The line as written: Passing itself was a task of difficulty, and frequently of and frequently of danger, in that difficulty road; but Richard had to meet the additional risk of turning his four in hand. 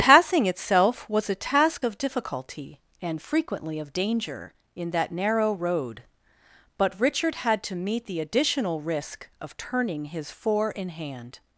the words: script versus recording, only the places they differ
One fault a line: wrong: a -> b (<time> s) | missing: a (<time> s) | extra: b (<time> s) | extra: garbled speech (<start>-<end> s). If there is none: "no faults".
missing: and frequently of (3.9 s)
wrong: difficulty -> narrow (5.1 s)